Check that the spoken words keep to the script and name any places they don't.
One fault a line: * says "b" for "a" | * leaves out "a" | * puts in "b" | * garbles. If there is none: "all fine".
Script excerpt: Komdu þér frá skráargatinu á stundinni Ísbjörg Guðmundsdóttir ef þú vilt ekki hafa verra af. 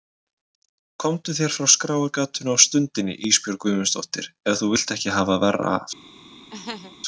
all fine